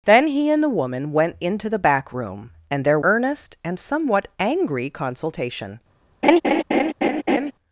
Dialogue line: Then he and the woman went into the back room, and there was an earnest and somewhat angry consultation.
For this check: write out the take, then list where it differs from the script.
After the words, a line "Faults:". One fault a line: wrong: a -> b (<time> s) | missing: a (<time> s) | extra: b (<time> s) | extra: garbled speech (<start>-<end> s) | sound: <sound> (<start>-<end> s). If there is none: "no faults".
Then he and the woman went into the back room, and there earnest and somewhat angry consultation.
Faults:
missing: was an (3.0 s)
sound: laugh (6.2-7.5 s)